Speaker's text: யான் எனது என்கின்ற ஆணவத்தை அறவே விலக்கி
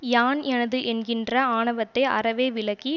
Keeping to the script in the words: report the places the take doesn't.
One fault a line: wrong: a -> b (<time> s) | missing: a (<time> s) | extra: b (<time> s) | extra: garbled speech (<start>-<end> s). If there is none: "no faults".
no faults